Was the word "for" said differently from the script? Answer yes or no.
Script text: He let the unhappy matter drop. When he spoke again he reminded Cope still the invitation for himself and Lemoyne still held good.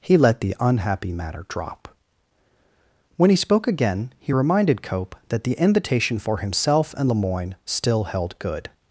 no